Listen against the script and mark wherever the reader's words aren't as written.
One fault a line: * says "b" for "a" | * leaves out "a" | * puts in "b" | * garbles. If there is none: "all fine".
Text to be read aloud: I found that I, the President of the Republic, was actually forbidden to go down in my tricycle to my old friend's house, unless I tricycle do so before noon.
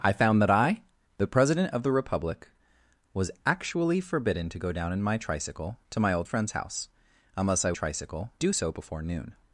all fine